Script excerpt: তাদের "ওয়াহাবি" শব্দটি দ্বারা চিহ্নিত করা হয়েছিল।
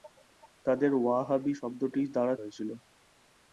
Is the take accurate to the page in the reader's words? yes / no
no